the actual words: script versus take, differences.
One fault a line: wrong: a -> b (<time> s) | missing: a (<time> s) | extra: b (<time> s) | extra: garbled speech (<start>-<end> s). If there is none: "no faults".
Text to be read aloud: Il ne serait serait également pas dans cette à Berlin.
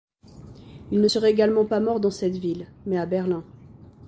missing: serait (1.3 s)
extra: mort (1.8 s)
extra: ville mais (2.4 s)